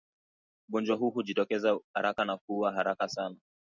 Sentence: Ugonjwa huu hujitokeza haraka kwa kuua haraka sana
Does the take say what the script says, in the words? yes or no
no